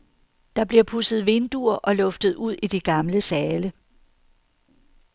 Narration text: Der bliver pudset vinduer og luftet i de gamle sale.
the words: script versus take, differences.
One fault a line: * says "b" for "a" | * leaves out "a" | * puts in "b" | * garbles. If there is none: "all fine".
* puts in "ud"